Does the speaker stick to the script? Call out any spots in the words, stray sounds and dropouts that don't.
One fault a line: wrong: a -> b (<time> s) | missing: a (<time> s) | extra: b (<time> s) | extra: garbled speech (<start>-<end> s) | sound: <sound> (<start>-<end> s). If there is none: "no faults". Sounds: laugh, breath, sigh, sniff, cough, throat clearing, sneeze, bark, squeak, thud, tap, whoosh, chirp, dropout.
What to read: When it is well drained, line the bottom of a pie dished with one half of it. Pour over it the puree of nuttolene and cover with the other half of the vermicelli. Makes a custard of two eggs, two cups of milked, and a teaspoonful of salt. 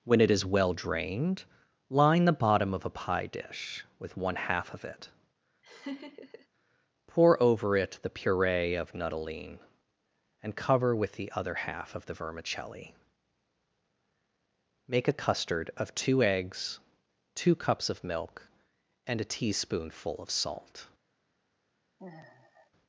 wrong: dished -> dish (3.3 s)
sound: laugh (5.6-6.5 s)
wrong: Makes -> Make (14.9 s)
wrong: milked -> milk (18.0 s)
sound: sigh (22.0-22.7 s)